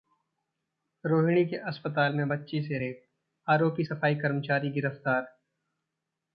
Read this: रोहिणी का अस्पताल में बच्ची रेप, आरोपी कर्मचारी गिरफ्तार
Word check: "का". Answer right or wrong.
wrong